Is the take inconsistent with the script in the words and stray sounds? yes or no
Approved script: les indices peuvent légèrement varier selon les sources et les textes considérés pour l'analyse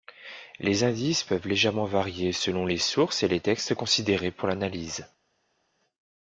no